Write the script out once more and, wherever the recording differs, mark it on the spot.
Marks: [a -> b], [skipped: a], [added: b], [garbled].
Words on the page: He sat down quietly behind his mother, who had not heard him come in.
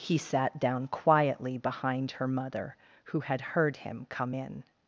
He sat down quietly behind [his -> her] mother, who had [skipped: not] heard him come in.